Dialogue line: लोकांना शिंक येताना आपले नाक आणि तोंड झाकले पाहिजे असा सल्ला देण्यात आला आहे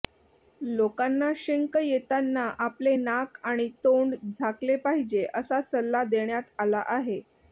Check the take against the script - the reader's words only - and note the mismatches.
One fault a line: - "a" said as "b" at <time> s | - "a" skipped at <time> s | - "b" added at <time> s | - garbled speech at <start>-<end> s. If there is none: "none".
none